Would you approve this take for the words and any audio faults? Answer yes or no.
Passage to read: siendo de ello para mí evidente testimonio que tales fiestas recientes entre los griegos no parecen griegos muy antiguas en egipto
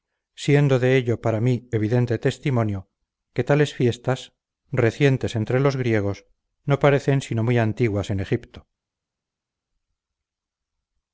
no